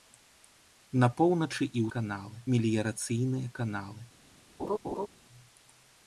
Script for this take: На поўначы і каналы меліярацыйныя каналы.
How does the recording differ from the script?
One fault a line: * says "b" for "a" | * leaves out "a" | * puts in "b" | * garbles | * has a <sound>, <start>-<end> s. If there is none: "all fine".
* has a laugh, 4.6-5.1 s